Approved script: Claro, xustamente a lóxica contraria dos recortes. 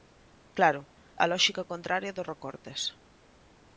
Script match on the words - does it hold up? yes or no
no